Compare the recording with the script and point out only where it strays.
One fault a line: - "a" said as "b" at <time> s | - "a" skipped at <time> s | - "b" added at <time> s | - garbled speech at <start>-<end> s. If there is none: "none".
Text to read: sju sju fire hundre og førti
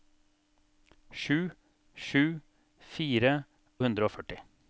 none